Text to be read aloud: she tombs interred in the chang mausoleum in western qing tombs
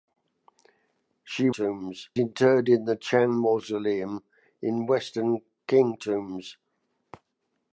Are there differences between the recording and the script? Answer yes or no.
no